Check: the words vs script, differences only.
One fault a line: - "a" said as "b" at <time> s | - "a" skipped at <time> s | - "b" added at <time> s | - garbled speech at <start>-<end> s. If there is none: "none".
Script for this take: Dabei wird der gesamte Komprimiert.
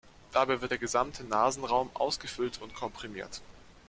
- "Nasenraum ausgefüllt und" added at 1.2 s